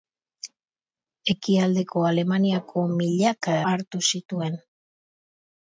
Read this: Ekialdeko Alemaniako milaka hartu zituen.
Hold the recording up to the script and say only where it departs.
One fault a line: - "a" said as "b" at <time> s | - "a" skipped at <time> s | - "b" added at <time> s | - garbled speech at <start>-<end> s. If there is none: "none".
none